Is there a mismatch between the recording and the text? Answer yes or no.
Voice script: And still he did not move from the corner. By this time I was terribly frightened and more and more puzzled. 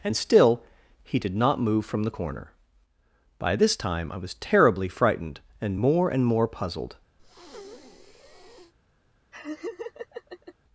no